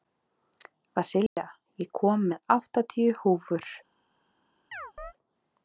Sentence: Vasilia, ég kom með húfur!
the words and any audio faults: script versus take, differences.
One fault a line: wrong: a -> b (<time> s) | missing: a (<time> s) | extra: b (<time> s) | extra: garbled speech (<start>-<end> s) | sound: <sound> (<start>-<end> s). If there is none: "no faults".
sound: dropout (1.3-1.4 s)
extra: áttatíu (2.6 s)
sound: chirp (4.7-5.1 s)